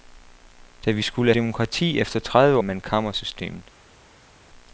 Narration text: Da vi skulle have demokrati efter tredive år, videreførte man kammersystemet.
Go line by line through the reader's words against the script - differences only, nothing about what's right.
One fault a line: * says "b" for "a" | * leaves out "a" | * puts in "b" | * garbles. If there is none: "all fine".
* leaves out "have"
* leaves out "år videreførte"